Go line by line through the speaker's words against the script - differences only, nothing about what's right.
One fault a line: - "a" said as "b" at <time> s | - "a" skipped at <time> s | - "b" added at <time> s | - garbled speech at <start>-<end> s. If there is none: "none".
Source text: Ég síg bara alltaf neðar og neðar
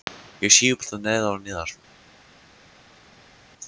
- "bara" skipped at 0.8 s